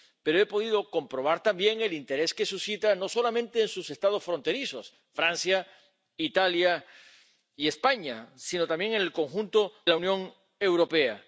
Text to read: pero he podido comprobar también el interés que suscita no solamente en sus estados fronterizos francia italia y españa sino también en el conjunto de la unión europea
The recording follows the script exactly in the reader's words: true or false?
false